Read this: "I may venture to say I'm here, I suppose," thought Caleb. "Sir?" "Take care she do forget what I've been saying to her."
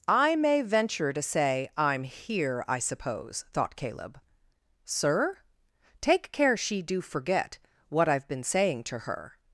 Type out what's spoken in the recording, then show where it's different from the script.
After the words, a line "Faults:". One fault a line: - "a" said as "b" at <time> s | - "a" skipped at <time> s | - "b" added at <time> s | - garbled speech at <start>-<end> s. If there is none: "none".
"I may venture to say I'm here, I suppose," thought Caleb. "Sir?" "Take care she do forget what I've been saying to her."
Faults:
none